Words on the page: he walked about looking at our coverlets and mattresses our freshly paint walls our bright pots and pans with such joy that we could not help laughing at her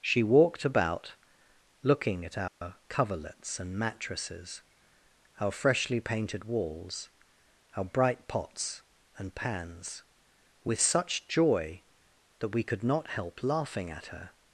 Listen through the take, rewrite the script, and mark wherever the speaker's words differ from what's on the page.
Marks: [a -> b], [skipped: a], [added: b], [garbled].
[he -> she] walked about looking at our coverlets and mattresses our freshly [paint -> painted] walls our bright pots and pans with such joy that we could not help laughing at her